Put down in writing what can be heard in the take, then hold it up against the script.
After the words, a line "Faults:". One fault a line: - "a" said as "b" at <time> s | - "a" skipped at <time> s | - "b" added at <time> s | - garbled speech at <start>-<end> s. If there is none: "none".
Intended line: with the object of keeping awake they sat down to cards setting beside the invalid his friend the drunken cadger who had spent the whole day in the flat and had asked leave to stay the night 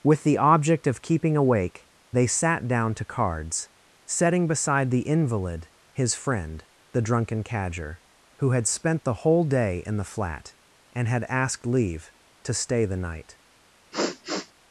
with the object of keeping awake they sat down to cards setting beside the invalid his friend the drunken cadger who had spent the whole day in the flat and had asked leave to stay the night
Faults:
none